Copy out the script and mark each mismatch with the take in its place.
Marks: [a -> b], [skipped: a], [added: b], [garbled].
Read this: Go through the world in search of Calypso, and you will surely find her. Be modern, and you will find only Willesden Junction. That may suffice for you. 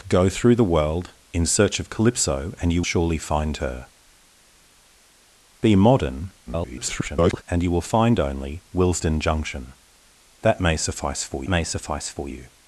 Go through the world in search of Calypso, and you [skipped: will] surely find her. Be modern, [garbled] and you will find only Willesden Junction. That may suffice for [added: may suffice for] you.